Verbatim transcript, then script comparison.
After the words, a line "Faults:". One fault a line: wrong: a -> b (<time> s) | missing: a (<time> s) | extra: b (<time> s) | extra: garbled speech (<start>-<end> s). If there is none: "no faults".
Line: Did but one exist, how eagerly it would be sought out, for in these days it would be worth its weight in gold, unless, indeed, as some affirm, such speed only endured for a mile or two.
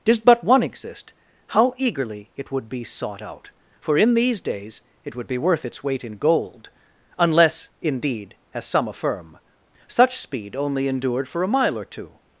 Did but one exist, how eagerly it would be sought out, for in these days it would be worth its weight in gold, unless, indeed, as some affirm, such speed only endured for a mile or two.
Faults:
no faults